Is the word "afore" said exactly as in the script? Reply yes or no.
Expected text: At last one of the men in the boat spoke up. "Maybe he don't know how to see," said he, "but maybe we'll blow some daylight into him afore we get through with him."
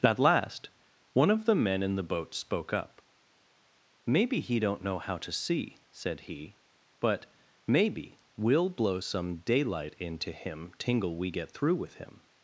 no